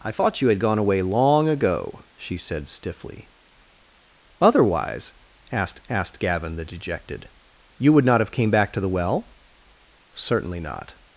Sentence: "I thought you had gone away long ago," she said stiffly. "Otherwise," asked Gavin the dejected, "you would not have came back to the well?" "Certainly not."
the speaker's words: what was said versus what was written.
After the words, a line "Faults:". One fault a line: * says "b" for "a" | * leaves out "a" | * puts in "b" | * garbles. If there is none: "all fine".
"I thought you had gone away long ago," she said stiffly. "Otherwise," asked asked Gavin the dejected, "you would not have came back to the well?" "Certainly not."
Faults:
* puts in "asked"